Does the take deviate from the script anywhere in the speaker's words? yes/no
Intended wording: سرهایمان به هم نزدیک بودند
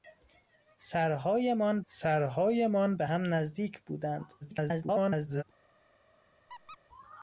yes